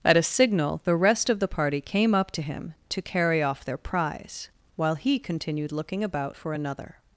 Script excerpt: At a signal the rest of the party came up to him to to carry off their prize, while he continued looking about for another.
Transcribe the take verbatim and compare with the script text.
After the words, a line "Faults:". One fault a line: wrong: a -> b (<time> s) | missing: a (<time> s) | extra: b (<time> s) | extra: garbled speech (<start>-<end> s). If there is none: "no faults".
At a signal the rest of the party came up to him to carry off their prize, while he continued looking about for another.
Faults:
missing: to (3.0 s)